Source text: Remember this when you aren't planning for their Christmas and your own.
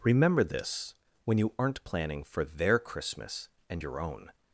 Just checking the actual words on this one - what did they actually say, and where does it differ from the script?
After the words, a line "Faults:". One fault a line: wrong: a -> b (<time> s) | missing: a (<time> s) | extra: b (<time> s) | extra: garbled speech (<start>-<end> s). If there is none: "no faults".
Remember this when you aren't planning for their Christmas and your own.
Faults:
no faults